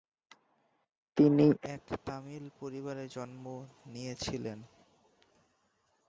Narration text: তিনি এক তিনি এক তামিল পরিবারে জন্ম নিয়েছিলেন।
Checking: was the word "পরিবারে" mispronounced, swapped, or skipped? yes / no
no